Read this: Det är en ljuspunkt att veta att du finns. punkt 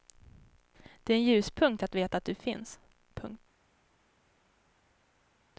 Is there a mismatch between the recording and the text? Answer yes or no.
no